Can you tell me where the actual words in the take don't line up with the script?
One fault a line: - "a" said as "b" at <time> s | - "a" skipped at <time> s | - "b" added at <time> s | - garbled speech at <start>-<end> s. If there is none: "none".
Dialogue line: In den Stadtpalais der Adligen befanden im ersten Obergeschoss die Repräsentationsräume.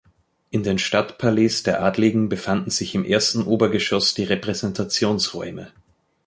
- "sich" added at 2.7 s